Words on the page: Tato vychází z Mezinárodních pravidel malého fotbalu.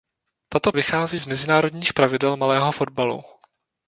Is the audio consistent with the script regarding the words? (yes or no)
yes